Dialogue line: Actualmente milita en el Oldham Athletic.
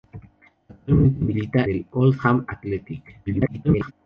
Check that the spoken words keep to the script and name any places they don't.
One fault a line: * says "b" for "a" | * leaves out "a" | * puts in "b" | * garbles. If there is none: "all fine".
* leaves out "en"
* garbles